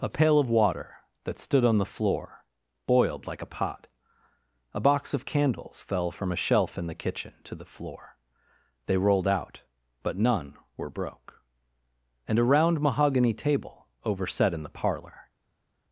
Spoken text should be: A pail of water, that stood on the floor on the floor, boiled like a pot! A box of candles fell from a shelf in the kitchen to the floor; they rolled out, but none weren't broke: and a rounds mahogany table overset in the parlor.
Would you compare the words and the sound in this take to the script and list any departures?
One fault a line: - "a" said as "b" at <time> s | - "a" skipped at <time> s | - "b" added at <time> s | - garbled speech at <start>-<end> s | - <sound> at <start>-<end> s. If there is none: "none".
- "on the floor" skipped at 2.4 s
- "weren't" said as "were" at 10.8 s
- "rounds" said as "round" at 12.4 s